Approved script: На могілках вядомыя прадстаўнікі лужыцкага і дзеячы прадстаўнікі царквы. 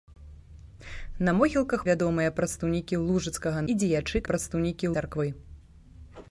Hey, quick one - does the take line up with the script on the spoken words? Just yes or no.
yes